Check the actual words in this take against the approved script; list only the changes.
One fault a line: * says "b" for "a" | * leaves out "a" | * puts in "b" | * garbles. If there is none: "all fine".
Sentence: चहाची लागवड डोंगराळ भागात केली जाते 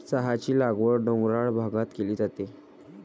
all fine